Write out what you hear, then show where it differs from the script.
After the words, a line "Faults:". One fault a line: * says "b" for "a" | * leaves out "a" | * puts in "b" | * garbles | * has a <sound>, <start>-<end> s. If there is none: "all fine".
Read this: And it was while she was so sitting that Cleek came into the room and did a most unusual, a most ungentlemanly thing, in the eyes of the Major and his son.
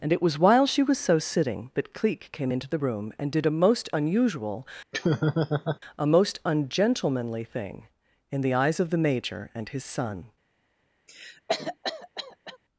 And it was while she was so sitting that Cleek came into the room and did a most unusual, a most ungentlemanly thing, in the eyes of the Major and his son.
Faults:
* has a laugh, 4.9-5.8 s
* has a cough, 11.1-12.6 s